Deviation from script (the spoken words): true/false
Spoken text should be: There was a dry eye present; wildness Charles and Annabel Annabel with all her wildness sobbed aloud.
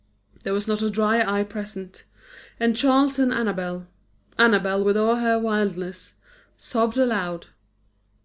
true